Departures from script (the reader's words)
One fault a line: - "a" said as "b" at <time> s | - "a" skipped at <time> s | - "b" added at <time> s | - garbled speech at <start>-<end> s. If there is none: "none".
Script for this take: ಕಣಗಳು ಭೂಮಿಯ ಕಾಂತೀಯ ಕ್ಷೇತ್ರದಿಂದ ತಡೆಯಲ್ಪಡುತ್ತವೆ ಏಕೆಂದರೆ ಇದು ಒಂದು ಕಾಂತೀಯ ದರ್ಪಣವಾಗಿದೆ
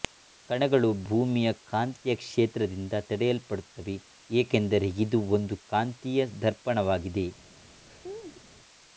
none